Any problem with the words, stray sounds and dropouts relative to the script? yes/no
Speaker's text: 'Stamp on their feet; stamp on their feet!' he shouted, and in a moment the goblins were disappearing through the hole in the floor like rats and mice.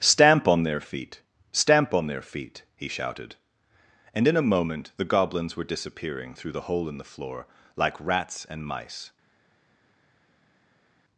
no